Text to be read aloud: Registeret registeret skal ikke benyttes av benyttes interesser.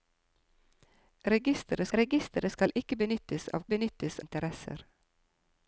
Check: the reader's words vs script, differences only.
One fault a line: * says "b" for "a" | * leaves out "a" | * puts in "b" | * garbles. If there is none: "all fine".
all fine